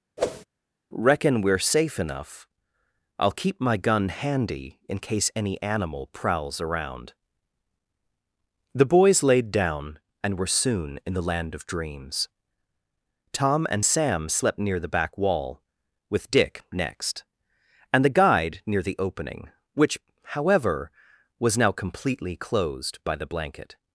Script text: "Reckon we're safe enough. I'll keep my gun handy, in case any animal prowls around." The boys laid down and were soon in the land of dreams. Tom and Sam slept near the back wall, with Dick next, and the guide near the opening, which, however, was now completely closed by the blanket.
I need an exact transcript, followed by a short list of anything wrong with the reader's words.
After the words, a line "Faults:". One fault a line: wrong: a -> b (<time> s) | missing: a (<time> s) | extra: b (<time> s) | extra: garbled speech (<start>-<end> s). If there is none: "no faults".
"Reckon we're safe enough. I'll keep my gun handy, in case any animal prowls around." The boys laid down and were soon in the land of dreams. Tom and Sam slept near the back wall, with Dick next, and the guide near the opening, which, however, was now completely closed by the blanket.
Faults:
no faults